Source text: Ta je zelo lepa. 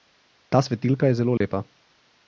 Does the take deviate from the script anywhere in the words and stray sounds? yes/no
yes